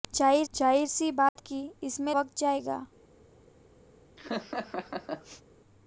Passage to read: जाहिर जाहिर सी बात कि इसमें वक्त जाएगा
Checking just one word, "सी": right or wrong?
right